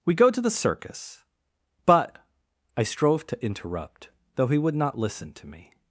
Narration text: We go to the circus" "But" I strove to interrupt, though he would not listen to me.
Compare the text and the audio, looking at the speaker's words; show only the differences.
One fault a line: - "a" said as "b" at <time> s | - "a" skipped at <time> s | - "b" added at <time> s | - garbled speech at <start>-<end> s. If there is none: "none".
none